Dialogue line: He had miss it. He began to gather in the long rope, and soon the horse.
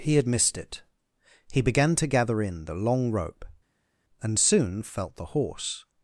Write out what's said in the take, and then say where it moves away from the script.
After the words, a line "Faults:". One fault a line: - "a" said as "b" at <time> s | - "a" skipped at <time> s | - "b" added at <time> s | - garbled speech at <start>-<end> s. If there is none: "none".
He had missed it. He began to gather in the long rope, and soon felt the horse.
Faults:
- "miss" said as "missed" at 0.3 s
- "felt" added at 4.8 s